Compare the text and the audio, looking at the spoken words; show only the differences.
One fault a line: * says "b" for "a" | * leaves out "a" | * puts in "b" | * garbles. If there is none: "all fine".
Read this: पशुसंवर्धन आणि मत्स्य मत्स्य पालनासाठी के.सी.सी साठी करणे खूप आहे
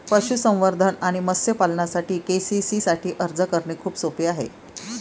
* leaves out "मत्स्य"
* puts in "अर्ज"
* puts in "सोपे"